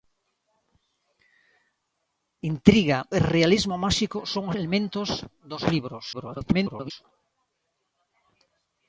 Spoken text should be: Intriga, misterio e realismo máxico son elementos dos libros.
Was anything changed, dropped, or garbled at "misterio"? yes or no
yes